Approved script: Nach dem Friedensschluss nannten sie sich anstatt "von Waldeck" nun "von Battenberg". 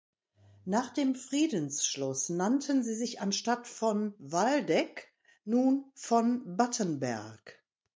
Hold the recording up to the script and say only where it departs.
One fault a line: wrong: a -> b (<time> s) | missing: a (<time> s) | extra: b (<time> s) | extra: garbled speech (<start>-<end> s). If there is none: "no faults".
no faults